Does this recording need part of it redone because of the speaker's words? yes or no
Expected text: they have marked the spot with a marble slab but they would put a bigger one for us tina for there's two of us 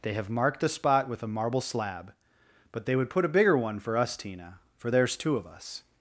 no